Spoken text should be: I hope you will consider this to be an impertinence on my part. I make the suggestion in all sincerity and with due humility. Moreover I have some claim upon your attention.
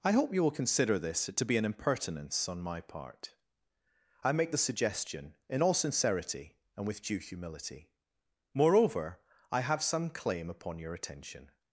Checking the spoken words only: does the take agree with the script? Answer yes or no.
yes